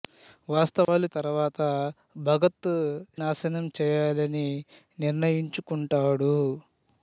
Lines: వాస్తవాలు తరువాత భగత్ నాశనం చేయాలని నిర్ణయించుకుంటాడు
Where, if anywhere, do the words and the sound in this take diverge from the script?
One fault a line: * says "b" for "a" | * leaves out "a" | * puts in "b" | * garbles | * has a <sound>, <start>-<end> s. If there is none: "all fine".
* has a dropout, 0.8-0.9 s